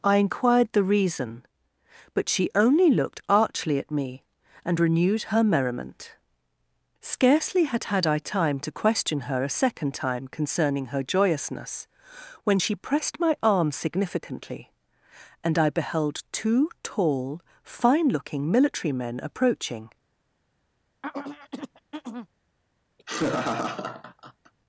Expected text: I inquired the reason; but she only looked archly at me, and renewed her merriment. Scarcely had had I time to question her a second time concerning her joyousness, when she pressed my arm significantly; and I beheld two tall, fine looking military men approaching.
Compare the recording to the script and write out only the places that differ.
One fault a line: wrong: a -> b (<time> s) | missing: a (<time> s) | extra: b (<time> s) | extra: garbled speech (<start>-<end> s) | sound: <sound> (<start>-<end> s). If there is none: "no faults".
sound: throat clearing (21.0-22.3 s)
sound: laugh (23.0-24.5 s)